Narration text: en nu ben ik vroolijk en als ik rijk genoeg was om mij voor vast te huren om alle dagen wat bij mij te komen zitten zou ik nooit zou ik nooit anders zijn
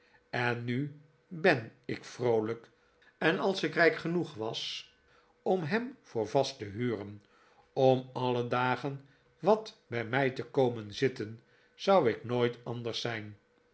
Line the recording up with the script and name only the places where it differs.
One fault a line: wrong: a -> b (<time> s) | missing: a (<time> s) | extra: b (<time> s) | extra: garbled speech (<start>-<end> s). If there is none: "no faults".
wrong: mij -> hem (5.6 s)
missing: zou ik nooit (12.6 s)